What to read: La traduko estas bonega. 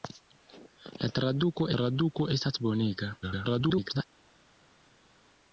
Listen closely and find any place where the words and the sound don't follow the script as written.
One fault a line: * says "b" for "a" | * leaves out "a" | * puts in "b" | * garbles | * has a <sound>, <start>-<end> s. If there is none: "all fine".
* puts in "traduko"
* garbles